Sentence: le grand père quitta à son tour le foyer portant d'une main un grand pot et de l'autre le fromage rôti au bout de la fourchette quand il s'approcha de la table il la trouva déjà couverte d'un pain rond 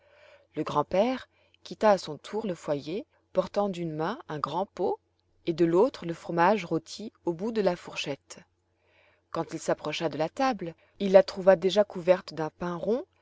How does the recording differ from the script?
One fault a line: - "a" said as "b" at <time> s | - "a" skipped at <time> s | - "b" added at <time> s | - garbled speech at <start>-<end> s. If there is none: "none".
none